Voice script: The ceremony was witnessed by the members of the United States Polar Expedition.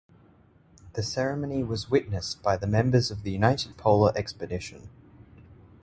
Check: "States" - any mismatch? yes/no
yes